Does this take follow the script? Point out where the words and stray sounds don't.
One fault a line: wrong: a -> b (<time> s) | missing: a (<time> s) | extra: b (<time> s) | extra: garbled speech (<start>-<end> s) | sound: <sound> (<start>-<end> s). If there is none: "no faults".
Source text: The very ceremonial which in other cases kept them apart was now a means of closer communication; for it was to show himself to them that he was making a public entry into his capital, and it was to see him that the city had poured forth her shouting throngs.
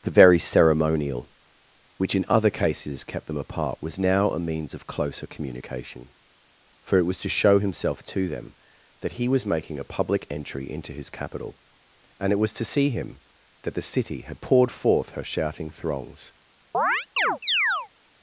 sound: chirp (16.7-17.9 s)